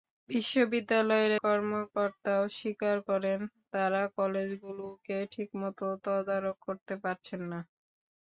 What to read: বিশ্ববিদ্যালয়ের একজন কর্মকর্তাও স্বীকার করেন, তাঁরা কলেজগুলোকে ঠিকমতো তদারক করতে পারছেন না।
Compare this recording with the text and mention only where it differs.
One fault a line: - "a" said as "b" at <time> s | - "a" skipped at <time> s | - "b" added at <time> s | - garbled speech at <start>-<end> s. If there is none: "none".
- "একজন" skipped at 1.3 s